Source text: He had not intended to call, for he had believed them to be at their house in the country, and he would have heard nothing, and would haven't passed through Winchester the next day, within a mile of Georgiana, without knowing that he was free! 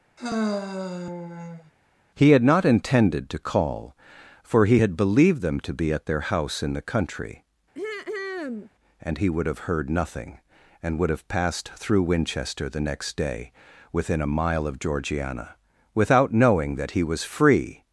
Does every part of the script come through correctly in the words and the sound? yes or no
no